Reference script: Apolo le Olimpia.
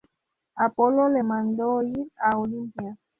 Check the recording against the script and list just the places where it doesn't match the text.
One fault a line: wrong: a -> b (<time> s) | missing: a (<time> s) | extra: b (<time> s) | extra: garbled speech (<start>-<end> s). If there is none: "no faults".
extra: mandó ir a (1.2 s)